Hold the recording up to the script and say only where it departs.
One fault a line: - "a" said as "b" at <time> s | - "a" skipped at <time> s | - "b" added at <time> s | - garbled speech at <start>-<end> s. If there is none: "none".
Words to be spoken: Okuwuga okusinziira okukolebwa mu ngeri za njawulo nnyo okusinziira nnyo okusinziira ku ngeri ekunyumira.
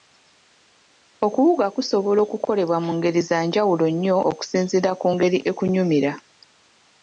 - "okusinziira" said as "kusobola" at 1.8 s
- "nnyo okusinziira" skipped at 4.9 s